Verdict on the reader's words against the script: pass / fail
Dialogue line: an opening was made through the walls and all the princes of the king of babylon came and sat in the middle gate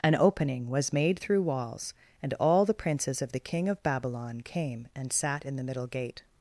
fail